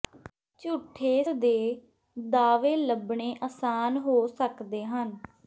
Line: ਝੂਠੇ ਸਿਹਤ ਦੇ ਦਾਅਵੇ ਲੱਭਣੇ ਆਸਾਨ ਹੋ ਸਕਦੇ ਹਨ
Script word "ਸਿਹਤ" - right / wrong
wrong